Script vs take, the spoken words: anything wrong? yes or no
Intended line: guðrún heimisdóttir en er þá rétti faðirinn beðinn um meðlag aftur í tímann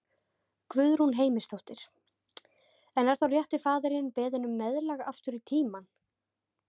no